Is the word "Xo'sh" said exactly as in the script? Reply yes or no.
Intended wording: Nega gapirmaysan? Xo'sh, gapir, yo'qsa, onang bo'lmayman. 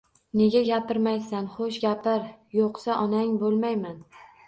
yes